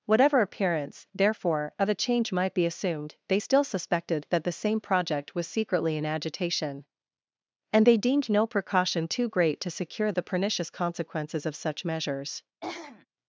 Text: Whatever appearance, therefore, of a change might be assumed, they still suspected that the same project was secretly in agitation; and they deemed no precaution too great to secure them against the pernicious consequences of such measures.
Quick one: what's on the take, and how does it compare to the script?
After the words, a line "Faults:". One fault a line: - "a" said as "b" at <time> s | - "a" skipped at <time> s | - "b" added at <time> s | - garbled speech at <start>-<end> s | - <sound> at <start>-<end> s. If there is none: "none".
Whatever appearance, therefore, of a change might be assumed, they still suspected that the same project was secretly in agitation; and they deemed no precaution too great to secure the pernicious consequences of such measures.
Faults:
- "them against" skipped at 10.1 s
- throat clearing at 12.6-13.1 s